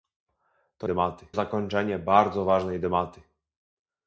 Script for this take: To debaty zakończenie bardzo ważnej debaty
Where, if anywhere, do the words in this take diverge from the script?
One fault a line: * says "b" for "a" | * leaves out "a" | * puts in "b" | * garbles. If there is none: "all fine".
all fine